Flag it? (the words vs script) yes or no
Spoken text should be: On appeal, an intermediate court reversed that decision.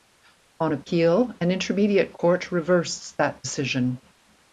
no